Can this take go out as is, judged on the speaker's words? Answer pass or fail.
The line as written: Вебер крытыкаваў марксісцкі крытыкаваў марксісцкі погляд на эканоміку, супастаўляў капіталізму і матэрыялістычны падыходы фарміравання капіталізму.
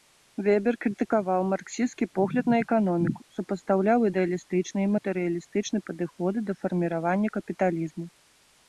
fail